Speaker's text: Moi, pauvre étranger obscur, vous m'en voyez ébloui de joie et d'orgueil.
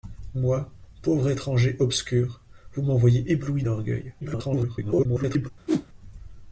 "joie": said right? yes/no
no